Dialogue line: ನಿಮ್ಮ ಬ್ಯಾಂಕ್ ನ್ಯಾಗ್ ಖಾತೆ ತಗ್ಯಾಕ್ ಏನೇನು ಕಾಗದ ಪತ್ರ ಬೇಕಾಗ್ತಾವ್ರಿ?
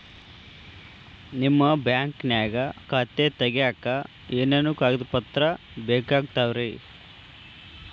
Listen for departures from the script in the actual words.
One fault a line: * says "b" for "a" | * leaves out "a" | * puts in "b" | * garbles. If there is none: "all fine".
all fine